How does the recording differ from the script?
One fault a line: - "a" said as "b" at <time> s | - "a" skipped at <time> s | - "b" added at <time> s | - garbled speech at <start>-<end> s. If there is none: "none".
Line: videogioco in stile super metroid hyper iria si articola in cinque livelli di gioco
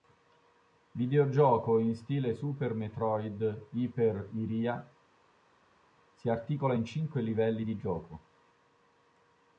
none